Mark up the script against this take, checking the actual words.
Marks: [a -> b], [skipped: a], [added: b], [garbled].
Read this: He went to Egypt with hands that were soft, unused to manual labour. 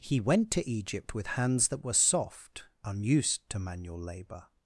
He went to Egypt with hands that were soft, unused to manual labour.